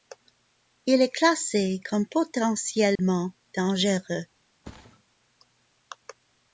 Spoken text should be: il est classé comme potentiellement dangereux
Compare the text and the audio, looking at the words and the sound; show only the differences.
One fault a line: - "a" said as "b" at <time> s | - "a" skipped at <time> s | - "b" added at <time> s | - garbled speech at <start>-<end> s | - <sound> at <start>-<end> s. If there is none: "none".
- dropout at 3.0-3.0 s
- thud at 4.6-5.0 s